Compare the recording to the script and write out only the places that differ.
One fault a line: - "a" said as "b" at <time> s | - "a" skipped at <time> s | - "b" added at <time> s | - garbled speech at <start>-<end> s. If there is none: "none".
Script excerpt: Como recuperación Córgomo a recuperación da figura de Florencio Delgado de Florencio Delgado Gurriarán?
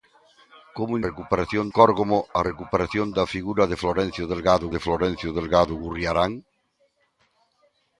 none